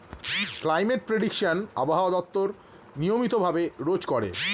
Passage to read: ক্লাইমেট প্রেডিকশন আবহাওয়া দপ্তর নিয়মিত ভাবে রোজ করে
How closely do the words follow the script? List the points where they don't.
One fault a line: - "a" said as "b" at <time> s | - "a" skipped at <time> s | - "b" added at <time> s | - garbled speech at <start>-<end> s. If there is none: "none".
none